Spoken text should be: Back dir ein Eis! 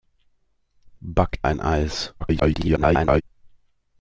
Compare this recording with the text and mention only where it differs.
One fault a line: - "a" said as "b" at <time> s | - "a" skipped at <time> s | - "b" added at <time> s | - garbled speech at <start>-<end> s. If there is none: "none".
- "dir" skipped at 1.4 s
- garbled speech at 2.2-3.2 s